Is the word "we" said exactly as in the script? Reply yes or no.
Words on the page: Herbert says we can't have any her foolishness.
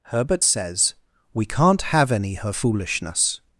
yes